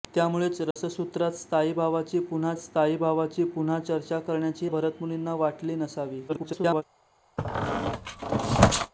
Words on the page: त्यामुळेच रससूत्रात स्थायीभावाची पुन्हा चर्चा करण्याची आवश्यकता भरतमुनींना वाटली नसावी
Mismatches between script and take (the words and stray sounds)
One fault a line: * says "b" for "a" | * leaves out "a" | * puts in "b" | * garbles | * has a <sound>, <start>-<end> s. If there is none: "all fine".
* has a dropout, 0.7-0.8 s
* puts in "स्थायीभावाची पुन्हा"
* leaves out "आवश्यकता"
* garbles
* has a squeak, 7.4-8.9 s